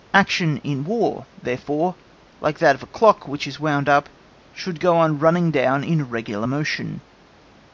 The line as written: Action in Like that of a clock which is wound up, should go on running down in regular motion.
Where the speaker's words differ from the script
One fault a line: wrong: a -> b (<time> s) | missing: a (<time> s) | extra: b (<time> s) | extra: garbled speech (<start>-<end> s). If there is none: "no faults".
extra: War therefore (0.8 s)